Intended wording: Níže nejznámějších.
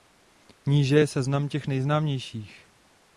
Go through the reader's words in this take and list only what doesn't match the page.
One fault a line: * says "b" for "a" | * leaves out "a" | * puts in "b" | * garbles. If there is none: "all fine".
* puts in "je seznam těch"